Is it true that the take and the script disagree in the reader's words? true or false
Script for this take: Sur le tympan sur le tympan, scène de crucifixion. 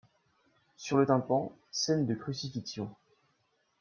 true